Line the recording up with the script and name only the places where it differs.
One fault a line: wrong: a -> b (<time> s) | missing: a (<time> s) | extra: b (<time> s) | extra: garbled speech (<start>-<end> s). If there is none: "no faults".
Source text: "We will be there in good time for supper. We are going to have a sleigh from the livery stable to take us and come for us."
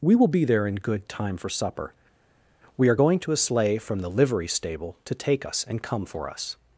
missing: have (3.3 s)